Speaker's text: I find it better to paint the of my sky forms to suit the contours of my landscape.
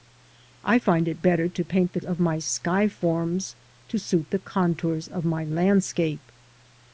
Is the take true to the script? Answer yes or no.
yes